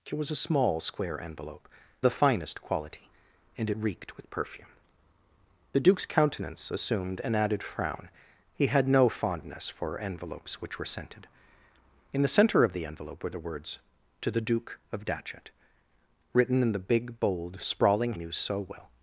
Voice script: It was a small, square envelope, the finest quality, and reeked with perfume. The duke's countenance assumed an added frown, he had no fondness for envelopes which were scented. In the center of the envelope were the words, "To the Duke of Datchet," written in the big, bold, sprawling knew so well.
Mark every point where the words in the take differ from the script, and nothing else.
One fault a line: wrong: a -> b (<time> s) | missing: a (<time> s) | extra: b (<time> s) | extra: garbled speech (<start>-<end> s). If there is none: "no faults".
no faults